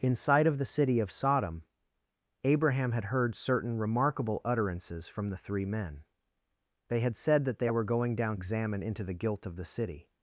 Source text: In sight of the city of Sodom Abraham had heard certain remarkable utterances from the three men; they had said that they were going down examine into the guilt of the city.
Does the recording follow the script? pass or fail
pass